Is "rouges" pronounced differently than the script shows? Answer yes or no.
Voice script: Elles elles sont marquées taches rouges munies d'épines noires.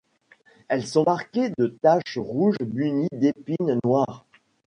no